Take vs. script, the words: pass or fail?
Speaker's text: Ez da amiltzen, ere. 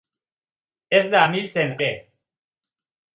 pass